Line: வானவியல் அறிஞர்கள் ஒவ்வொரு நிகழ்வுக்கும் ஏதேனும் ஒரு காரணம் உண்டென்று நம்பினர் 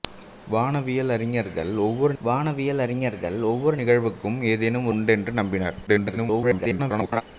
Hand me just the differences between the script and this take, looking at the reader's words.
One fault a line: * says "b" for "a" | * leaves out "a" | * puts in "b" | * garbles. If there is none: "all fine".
* puts in "வானவியல் அறிஞர்கள் ஒவ்வொரு"
* leaves out "ஒரு காரணம்"
* garbles